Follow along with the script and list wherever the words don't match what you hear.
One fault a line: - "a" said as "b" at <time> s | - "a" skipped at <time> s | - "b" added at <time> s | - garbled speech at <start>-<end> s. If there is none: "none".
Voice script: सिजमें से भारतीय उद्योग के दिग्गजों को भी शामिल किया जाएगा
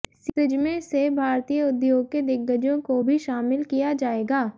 none